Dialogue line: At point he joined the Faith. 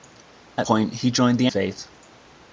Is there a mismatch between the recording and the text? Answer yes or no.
no